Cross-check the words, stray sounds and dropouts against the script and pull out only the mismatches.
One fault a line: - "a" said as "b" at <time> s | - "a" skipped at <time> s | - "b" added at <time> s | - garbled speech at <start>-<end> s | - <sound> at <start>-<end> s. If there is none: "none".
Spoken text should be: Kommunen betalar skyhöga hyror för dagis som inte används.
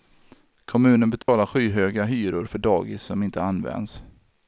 - dropout at 1.2-1.3 s